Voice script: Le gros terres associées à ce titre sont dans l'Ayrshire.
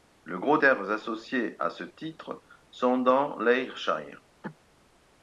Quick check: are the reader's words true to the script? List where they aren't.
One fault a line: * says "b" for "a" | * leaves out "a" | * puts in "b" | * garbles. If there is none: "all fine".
all fine